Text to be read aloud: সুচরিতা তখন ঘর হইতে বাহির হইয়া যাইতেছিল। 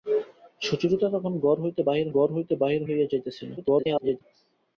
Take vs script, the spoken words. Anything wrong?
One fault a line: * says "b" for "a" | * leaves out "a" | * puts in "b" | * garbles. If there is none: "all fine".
* puts in "ঘর হইতে বাহির"
* garbles